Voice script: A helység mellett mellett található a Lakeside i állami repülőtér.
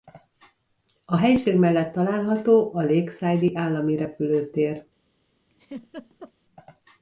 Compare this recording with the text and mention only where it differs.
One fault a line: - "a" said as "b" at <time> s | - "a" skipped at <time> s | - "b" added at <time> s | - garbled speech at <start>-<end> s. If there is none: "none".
- "mellett" skipped at 1.9 s